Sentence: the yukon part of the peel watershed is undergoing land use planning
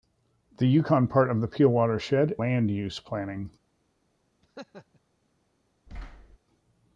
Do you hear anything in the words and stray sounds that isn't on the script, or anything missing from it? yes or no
yes